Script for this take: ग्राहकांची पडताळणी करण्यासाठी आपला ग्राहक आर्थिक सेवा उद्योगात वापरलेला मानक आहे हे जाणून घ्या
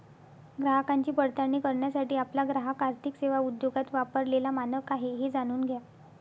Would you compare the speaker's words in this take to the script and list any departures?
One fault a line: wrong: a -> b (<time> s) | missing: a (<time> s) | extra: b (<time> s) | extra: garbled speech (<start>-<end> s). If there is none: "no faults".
no faults